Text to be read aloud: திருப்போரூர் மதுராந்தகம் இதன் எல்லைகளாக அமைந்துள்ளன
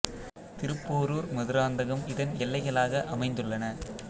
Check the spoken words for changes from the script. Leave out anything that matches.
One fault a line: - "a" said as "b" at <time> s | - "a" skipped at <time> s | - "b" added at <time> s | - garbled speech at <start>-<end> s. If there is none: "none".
none